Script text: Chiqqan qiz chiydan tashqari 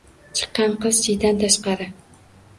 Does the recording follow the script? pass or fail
pass